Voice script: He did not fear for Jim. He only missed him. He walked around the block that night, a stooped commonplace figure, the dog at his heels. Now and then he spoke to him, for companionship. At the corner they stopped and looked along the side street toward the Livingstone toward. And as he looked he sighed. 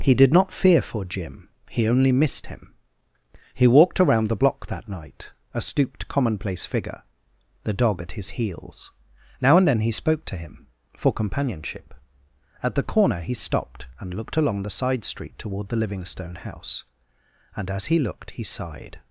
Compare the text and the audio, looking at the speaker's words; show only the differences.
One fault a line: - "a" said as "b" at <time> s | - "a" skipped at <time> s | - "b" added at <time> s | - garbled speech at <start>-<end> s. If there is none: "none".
- "they" said as "he" at 13.2 s
- "toward" said as "house" at 16.3 s